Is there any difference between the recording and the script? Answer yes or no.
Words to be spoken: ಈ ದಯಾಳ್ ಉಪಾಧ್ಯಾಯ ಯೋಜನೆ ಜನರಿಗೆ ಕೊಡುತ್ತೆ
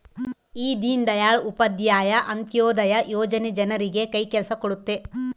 yes